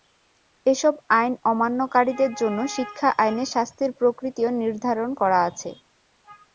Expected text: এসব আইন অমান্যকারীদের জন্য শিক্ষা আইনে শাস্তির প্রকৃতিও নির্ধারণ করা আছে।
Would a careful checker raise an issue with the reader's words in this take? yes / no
no